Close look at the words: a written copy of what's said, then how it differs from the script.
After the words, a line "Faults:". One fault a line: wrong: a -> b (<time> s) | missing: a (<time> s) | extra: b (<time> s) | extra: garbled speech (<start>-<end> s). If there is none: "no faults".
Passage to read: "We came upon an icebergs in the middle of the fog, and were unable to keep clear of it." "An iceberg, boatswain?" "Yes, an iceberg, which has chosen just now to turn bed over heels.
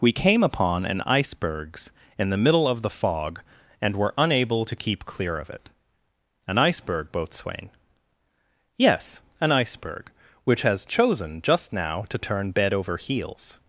"We came upon an icebergs in the middle of the fog, and were unable to keep clear of it." "An iceberg, boatswain?" "Yes, an iceberg, which has chosen just now to turn bed over heels.
Faults:
no faults